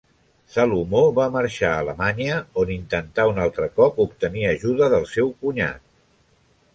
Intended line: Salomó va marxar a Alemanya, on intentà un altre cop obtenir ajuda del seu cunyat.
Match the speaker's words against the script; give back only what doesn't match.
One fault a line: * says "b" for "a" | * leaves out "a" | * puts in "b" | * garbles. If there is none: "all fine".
all fine